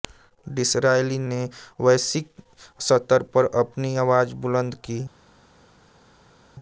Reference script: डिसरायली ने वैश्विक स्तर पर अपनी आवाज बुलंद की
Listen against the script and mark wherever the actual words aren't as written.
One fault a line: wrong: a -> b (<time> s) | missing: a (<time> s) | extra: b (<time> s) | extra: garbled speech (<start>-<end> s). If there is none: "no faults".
no faults